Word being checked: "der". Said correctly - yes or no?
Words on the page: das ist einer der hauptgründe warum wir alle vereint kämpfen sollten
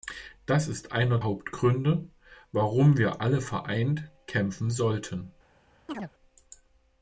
no